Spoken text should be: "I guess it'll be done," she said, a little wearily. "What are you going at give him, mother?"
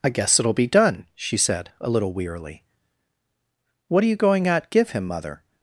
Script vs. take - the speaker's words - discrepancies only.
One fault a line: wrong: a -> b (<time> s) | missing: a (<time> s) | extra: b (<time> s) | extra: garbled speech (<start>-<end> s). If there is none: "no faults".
no faults